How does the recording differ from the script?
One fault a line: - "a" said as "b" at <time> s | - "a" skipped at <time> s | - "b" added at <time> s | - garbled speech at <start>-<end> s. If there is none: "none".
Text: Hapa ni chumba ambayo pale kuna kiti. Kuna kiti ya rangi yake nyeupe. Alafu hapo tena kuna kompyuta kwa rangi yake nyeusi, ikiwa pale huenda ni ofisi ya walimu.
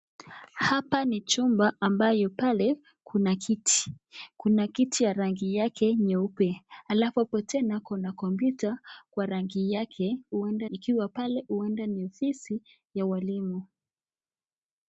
- "nyeusi" said as "huenda" at 10.3 s